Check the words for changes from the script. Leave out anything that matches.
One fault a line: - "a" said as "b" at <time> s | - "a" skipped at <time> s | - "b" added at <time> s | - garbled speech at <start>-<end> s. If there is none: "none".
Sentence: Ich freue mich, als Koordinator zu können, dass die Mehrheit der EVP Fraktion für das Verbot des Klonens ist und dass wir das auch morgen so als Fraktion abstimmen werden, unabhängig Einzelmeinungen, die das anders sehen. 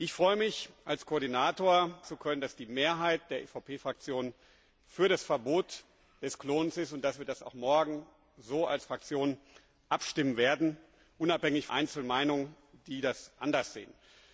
none